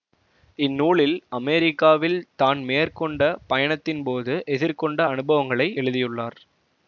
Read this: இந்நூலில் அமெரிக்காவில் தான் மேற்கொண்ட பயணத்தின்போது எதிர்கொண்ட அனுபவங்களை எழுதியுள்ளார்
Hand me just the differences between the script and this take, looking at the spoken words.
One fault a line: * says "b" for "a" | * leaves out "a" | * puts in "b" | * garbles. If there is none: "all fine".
all fine